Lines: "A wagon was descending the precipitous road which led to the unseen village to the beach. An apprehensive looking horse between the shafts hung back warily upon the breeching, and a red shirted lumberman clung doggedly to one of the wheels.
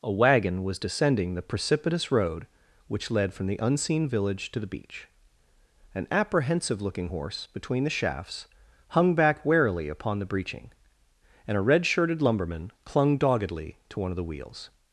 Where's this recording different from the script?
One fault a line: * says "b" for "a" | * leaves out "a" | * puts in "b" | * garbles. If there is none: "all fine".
* says "from" for "to"